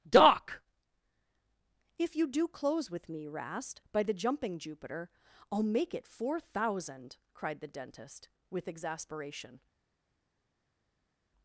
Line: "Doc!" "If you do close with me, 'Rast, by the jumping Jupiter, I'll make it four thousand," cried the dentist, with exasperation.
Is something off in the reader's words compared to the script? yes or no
no